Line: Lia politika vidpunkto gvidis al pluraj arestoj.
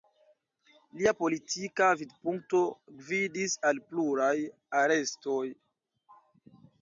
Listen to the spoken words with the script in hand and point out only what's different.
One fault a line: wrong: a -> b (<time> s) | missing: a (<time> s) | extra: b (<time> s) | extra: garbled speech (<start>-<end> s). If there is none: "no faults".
no faults